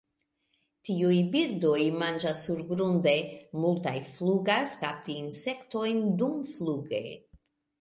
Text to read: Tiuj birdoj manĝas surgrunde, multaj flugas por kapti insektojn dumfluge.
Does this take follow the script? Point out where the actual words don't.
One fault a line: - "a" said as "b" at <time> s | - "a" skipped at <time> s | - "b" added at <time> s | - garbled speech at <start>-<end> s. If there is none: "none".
- "por" skipped at 4.8 s